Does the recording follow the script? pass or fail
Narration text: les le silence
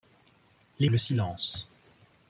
pass